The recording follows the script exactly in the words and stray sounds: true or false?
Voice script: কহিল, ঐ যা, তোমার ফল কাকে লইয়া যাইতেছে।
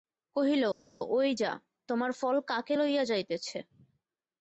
true